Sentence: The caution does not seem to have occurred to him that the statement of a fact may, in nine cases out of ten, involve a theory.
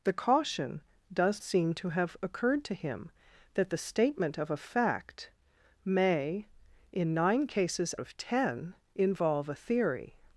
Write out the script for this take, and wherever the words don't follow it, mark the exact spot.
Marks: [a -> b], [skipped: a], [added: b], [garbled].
The caution does [skipped: not] seem to have occurred to him that the statement of a fact may, in nine cases [skipped: out] of ten, involve a theory.